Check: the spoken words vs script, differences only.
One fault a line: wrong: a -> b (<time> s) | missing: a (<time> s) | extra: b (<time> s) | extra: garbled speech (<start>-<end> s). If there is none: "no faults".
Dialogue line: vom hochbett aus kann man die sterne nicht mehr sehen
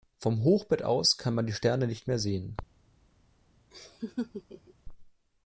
no faults